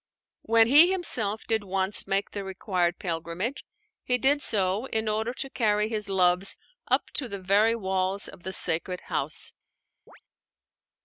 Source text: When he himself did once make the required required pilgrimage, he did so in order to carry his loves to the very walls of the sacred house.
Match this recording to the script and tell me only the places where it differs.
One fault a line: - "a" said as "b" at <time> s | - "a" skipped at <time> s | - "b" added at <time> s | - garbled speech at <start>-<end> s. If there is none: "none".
- "required" skipped at 3.0 s
- "up" added at 6.9 s